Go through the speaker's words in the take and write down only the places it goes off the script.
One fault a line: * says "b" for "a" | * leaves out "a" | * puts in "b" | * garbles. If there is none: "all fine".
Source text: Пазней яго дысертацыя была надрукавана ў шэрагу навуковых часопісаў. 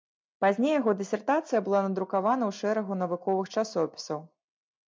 all fine